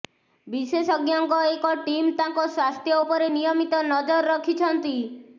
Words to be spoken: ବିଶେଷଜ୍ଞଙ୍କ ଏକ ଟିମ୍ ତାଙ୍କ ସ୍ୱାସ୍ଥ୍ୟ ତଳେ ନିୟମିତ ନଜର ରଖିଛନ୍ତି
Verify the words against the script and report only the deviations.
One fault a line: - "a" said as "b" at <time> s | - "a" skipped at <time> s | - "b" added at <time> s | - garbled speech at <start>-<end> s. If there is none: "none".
- "ତଳେ" said as "ଉପରେ" at 3.0 s